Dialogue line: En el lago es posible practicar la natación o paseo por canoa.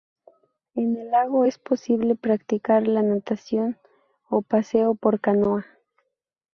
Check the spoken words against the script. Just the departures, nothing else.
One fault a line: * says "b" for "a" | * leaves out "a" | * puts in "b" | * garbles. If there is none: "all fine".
all fine